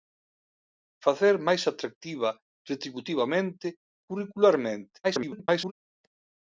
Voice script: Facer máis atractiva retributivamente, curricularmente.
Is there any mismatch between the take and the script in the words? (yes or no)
yes